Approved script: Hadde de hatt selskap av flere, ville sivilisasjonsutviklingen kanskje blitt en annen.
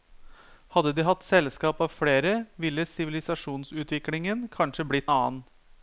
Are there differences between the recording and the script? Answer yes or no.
yes